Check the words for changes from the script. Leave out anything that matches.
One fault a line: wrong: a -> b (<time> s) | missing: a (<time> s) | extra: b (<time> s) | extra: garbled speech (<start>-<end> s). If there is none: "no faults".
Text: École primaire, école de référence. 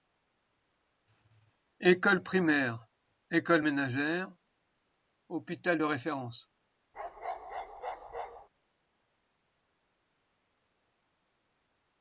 extra: ménagère hôpital (3.6 s)